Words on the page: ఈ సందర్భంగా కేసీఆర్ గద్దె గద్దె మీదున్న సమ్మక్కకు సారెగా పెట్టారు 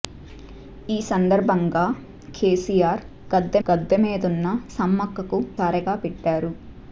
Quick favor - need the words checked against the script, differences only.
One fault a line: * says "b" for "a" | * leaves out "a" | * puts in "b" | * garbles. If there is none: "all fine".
all fine